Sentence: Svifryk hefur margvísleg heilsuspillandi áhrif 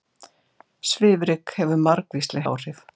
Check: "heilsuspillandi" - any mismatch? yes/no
yes